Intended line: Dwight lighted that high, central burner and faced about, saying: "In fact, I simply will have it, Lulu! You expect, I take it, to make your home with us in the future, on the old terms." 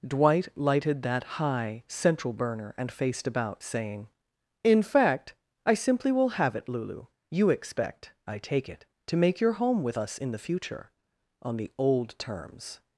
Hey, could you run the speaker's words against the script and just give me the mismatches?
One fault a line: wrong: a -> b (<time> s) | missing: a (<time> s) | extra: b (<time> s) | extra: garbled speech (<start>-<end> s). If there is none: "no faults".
no faults